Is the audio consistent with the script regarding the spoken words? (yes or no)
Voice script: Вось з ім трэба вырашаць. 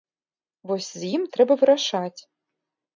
yes